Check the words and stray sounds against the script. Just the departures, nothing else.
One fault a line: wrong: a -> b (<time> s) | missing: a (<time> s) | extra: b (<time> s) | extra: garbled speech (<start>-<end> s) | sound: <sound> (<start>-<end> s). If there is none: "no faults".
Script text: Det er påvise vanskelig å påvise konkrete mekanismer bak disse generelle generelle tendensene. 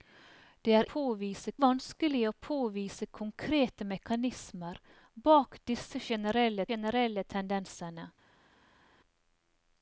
no faults